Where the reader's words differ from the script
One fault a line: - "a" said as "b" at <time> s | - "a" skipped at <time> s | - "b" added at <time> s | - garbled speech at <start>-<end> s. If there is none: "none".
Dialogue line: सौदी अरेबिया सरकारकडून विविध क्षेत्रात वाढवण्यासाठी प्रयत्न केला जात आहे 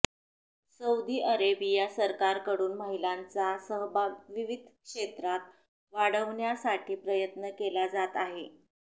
- "महिलांचा सहभाग" added at 2.8 s